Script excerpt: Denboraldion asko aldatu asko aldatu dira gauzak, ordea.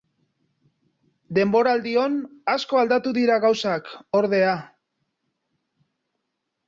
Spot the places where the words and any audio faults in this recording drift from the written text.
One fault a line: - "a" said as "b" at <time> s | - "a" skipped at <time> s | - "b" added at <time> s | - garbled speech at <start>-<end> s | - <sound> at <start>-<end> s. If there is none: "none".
- "asko aldatu" skipped at 3.1 s